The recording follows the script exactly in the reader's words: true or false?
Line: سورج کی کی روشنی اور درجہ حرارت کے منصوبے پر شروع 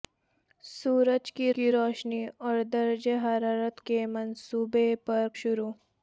true